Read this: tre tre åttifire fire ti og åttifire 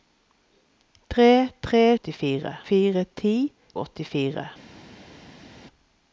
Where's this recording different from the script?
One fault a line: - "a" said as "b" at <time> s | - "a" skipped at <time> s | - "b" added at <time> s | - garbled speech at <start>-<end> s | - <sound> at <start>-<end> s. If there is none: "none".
none